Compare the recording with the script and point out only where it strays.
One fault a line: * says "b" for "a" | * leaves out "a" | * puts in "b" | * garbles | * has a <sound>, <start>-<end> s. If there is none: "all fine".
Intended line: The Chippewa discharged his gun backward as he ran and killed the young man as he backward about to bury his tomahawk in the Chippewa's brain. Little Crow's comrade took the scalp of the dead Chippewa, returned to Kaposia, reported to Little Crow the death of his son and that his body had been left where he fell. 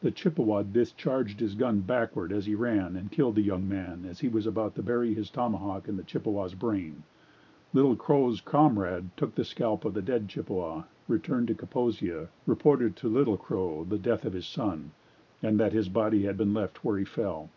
* says "was" for "backward"